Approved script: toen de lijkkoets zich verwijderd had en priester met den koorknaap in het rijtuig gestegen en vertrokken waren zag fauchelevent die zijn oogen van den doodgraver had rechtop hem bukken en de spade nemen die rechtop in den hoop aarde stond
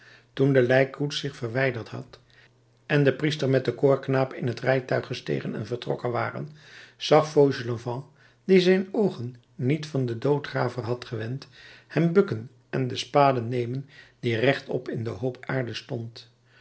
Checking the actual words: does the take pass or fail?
fail